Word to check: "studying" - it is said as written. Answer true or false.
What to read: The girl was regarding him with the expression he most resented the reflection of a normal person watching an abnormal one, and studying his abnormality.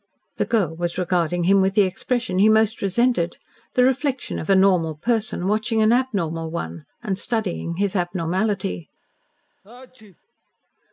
true